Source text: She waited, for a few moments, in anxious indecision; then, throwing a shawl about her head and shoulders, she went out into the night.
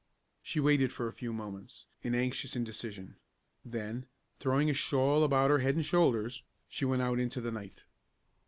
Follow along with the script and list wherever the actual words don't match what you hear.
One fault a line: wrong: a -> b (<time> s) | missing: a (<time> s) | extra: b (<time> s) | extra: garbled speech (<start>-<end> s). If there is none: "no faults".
no faults